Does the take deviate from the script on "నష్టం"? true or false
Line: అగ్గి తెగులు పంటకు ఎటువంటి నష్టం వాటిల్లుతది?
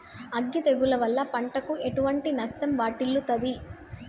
false